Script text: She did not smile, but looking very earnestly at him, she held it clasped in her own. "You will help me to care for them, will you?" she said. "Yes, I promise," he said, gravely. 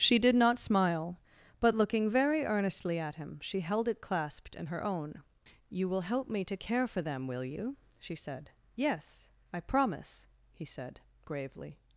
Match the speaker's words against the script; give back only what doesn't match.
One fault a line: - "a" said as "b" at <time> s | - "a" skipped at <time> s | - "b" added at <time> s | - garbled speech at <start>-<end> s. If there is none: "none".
none